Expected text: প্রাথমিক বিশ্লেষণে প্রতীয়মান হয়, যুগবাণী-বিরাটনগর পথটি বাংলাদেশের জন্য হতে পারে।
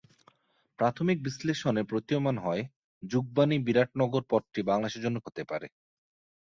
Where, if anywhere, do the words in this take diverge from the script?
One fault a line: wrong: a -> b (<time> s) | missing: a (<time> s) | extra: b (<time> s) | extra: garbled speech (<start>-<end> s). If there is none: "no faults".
no faults